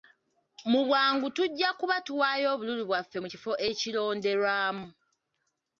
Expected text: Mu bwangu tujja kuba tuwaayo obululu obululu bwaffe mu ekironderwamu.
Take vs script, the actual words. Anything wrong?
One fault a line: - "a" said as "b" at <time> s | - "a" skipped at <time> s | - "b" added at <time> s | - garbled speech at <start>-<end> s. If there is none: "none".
- "obululu" skipped at 2.8 s
- "kifo" added at 3.3 s